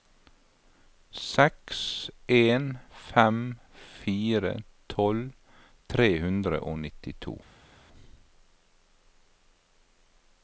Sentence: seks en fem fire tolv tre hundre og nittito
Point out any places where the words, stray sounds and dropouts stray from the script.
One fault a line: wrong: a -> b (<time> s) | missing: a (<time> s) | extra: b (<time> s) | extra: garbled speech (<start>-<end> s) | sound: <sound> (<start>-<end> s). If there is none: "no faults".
no faults